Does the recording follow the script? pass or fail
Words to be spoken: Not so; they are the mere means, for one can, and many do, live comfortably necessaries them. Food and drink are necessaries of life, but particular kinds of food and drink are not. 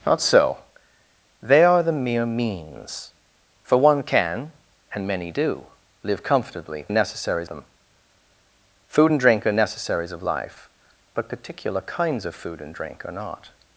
pass